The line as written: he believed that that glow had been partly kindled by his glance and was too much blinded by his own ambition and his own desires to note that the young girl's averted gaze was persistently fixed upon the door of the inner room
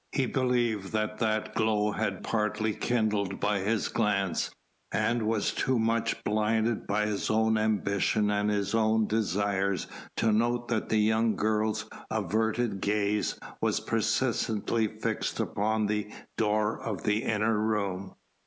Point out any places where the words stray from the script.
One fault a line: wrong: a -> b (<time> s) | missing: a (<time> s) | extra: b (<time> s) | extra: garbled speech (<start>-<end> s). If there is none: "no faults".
missing: been (2.2 s)